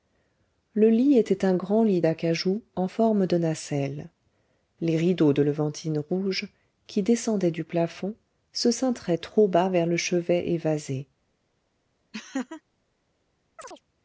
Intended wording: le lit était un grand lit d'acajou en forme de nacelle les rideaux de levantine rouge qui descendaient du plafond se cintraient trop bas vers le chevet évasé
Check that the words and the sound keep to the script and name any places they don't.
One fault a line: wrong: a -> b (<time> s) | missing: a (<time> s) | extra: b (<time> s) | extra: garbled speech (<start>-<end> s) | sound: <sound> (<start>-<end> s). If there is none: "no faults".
sound: laugh (12.1-12.6 s)
sound: chirp (13.6-13.8 s)